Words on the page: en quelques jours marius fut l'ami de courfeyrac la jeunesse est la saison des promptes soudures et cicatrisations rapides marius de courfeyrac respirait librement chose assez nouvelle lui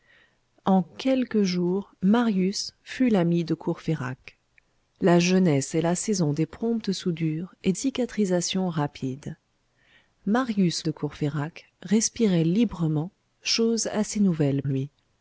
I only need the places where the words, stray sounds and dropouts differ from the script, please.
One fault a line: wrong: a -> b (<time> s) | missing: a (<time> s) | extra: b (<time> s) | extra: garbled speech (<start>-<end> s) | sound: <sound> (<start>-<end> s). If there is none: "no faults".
no faults